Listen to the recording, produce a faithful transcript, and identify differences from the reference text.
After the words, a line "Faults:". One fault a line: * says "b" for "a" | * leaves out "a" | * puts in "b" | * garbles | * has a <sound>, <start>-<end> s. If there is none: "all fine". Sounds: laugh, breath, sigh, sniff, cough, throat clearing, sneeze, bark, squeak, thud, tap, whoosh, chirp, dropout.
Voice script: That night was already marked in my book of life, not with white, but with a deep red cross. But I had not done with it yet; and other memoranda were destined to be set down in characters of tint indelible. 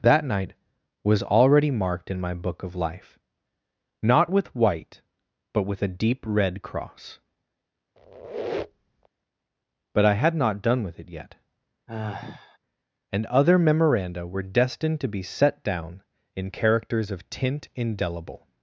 That night was already marked in my book of life, not with white, but with a deep red cross. But I had not done with it yet; and other memoranda were destined to be set down in characters of tint indelible.
Faults:
* has a squeak, 8.0-9.1 s
* has a sigh, 11.9-12.6 s